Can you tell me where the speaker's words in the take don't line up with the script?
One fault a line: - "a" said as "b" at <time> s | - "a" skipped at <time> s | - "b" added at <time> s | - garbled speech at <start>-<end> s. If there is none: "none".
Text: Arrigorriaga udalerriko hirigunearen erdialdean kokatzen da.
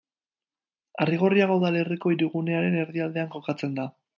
none